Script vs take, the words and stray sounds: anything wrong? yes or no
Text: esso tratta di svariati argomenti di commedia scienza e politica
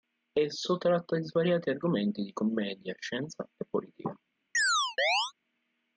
yes